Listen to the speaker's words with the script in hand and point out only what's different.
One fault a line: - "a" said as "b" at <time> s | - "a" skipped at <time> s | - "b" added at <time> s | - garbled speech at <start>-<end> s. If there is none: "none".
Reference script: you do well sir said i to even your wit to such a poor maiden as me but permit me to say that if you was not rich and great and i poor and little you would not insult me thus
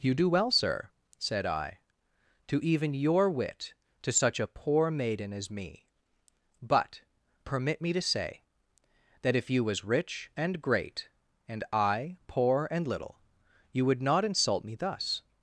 - "not" skipped at 9.8 s